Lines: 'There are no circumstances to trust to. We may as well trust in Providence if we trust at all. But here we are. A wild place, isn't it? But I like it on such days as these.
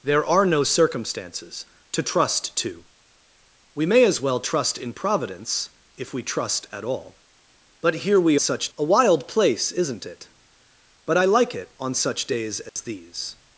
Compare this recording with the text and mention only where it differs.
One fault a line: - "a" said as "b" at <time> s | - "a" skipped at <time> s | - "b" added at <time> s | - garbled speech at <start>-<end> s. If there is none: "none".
- "are" said as "such" at 8.4 s